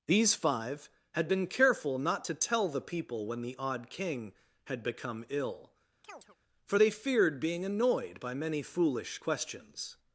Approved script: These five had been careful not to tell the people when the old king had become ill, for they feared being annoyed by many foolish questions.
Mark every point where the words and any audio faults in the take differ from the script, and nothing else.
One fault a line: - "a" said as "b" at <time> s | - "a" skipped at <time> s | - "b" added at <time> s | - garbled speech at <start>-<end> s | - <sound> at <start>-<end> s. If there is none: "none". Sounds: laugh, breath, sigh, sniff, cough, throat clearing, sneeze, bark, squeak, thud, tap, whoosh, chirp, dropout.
- "old" said as "odd" at 3.6 s
- chirp at 6.0-6.4 s